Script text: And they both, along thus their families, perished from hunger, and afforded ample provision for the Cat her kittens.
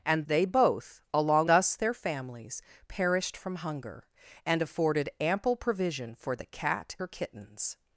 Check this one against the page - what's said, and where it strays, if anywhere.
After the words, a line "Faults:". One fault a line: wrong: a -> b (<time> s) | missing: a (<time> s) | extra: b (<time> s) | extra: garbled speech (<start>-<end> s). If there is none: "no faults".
And they both, along thus their families, perished from hunger, and afforded ample provision for the Cat her kittens.
Faults:
no faults